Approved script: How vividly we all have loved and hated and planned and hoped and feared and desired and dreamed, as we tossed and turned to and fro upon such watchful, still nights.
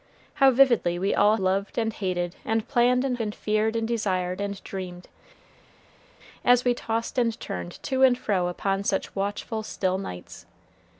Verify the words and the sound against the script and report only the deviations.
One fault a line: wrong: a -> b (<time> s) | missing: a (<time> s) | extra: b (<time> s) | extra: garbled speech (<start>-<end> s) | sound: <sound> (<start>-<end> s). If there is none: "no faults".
missing: have (1.4 s)
missing: hoped (3.2 s)